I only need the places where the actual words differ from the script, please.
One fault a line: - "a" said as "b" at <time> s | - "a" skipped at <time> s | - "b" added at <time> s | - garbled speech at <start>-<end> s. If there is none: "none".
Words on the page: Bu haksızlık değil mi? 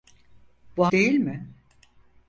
- "haksızlık" skipped at 0.9 s